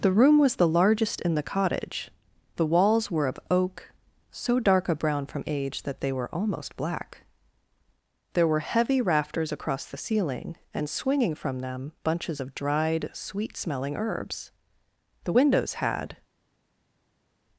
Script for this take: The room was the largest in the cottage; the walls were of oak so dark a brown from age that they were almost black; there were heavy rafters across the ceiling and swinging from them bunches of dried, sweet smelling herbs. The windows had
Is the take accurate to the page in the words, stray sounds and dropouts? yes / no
yes